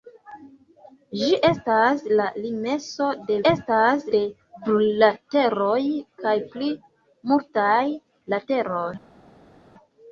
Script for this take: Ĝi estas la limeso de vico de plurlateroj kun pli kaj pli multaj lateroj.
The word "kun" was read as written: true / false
false